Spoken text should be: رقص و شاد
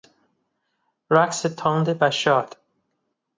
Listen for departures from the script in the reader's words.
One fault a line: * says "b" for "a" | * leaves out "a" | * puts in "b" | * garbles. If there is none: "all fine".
* puts in "تند"